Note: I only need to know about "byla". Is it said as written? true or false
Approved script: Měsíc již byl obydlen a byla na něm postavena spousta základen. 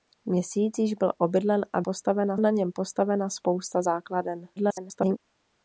false